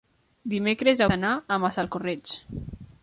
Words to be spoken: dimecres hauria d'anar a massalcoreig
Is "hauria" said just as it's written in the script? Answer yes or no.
no